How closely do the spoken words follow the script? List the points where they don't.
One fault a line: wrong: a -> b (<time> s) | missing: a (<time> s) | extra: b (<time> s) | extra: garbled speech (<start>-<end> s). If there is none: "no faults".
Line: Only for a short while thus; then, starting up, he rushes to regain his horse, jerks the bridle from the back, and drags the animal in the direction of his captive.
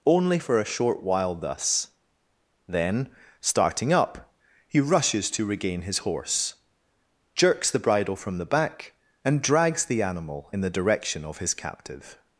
no faults